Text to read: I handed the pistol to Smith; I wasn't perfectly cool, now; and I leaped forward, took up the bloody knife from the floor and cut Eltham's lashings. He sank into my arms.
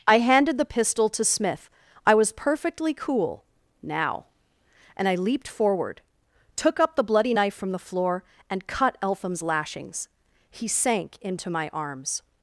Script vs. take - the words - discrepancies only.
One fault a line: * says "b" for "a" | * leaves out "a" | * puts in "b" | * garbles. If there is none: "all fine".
* says "was" for "wasn't"